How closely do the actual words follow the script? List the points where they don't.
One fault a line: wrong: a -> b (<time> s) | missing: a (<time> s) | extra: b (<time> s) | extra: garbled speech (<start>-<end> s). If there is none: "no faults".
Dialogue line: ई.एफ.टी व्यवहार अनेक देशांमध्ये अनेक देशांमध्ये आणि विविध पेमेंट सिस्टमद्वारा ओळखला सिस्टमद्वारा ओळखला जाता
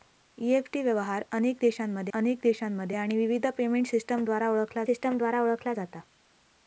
no faults